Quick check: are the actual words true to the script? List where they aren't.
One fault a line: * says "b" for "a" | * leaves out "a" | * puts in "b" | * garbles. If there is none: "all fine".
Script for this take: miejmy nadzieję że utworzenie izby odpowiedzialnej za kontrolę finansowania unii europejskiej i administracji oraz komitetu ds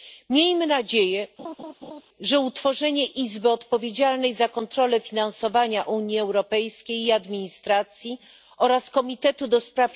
all fine